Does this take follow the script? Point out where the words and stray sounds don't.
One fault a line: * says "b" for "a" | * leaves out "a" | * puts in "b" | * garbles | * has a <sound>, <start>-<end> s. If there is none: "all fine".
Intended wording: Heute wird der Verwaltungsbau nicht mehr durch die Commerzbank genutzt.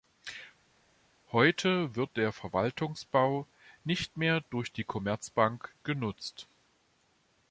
all fine